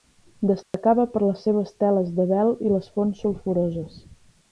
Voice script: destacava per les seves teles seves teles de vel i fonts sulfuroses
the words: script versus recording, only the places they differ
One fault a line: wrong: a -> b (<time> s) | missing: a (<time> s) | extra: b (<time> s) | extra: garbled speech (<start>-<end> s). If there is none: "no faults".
missing: seves teles (2.1 s)
extra: les (2.8 s)